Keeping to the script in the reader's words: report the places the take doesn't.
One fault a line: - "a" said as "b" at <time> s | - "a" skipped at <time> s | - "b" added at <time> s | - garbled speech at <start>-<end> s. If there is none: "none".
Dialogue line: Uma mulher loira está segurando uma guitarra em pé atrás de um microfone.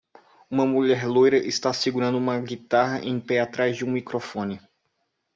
none